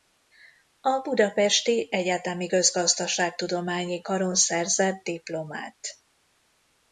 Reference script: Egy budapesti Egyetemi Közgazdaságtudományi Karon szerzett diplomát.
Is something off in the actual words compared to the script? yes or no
yes